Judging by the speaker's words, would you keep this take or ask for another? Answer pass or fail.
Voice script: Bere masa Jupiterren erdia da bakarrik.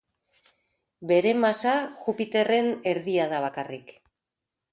pass